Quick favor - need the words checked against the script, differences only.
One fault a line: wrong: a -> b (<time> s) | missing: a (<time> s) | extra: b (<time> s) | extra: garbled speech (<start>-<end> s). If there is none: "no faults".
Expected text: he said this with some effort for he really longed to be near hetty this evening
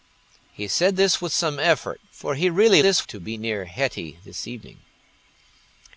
wrong: longed -> this (2.8 s)